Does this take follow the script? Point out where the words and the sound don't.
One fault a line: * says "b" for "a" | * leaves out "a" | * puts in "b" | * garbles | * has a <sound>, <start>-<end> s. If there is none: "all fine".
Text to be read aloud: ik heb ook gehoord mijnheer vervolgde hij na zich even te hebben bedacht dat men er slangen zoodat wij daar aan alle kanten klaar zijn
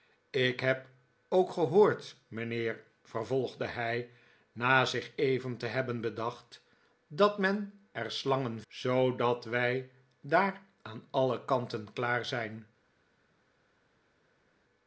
all fine